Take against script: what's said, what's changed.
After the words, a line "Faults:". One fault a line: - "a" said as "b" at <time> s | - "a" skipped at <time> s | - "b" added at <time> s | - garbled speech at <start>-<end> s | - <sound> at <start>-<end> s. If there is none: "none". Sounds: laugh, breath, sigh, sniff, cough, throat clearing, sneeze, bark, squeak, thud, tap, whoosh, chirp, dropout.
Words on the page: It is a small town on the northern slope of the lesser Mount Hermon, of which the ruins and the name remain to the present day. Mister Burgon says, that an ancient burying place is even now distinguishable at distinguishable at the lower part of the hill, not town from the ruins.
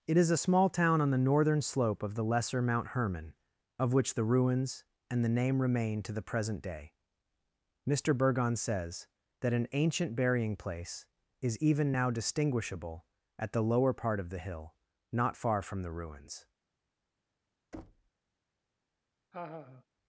It is a small town on the northern slope of the lesser Mount Hermon, of which the ruins and the name remain to the present day. Mister Burgon says, that an ancient burying place is even now distinguishable at the lower part of the hill, not far from the ruins.
Faults:
- "distinguishable at" skipped at 13.5 s
- "town" said as "far" at 15.4 s
- thud at 17.7-18.1 s
- laugh at 19.3-19.8 s